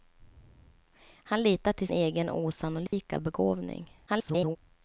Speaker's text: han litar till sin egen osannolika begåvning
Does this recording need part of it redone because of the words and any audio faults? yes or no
yes